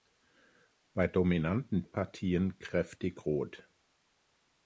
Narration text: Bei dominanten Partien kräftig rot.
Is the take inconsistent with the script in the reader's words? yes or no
no